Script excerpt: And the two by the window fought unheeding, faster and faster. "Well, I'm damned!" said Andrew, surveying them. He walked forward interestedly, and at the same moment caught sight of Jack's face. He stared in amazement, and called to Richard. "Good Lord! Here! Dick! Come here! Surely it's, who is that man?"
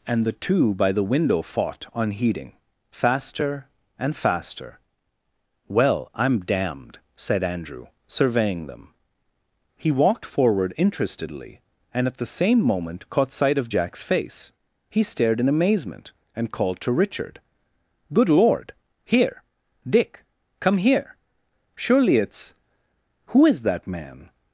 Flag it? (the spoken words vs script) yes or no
no